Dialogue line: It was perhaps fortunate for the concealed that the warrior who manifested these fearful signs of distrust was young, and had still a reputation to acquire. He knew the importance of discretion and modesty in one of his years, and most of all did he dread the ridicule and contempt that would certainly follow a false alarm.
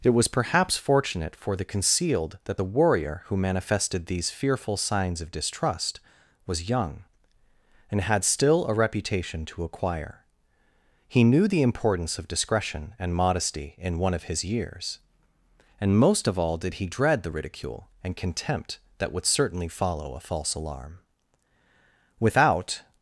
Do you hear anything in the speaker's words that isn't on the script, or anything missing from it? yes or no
yes